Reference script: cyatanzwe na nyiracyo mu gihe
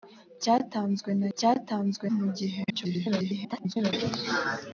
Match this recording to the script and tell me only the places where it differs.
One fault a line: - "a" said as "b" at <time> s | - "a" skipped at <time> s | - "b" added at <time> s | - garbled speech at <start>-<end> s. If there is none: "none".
- "nyiracyo" said as "cyatanzwe" at 1.4 s
- garbled speech at 2.7-3.9 s